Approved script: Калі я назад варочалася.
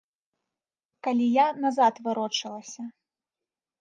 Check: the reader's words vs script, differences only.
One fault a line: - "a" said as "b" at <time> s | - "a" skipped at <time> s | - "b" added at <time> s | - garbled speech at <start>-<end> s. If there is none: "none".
none